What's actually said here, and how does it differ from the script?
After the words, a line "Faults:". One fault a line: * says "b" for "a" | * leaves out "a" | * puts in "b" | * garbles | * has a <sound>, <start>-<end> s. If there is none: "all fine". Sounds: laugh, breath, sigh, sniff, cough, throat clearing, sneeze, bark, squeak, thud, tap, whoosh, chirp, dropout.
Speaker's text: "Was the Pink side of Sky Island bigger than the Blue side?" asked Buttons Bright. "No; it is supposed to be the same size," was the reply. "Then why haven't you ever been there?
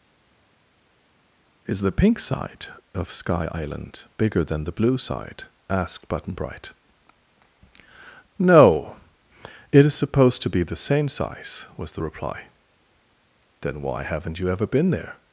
"Is the Pink side of Sky Island bigger than the Blue side?" asked Button Bright. "No; it is supposed to be the same size," was the reply. "Then why haven't you ever been there?
Faults:
* says "Is" for "Was"
* says "Button" for "Buttons"